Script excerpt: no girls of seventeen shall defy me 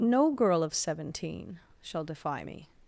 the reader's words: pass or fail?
fail